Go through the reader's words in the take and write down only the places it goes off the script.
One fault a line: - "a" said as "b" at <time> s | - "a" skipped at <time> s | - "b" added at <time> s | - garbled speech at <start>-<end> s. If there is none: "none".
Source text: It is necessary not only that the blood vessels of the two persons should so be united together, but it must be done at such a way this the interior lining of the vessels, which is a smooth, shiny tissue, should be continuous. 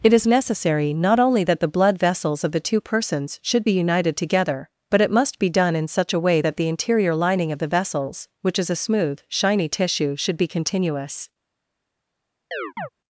- "so" skipped at 3.7 s
- "at" said as "in" at 5.7 s
- "this" said as "that" at 6.4 s